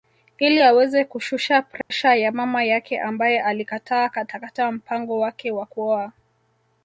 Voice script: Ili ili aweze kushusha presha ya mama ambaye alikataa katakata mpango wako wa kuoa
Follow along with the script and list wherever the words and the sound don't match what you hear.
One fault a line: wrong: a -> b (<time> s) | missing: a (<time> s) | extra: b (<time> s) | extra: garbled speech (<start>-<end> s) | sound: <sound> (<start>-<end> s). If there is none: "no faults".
missing: ili (0.6 s)
sound: dropout (1.8-1.9 s)
extra: yake (2.6 s)
wrong: wako -> wake (5.2 s)